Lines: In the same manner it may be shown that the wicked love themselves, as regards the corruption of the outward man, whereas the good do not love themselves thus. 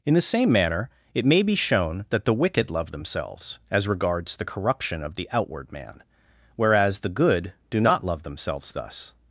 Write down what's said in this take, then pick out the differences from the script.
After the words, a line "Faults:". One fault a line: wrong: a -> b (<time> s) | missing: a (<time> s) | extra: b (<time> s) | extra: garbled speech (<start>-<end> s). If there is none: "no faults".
In the same manner it may be shown that the wicked love themselves, as regards the corruption of the outward man, whereas the good do not love themselves thus.
Faults:
no faults